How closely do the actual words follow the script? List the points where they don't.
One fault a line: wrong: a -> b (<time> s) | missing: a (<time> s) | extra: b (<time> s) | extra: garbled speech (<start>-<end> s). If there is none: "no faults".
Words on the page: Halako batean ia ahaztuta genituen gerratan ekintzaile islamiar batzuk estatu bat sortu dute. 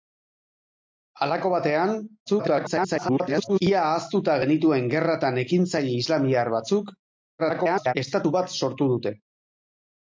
extra: garbled speech (2.3-3.6 s)
extra: garbled speech (7.4-7.9 s)